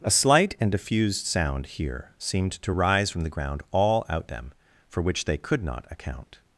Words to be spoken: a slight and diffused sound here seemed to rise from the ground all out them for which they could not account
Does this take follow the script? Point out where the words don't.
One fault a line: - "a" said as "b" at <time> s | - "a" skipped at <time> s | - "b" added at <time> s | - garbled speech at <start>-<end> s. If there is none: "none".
none